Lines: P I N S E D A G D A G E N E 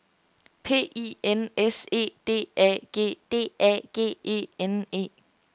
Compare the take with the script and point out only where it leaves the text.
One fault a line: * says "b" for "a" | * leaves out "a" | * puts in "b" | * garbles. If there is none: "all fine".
all fine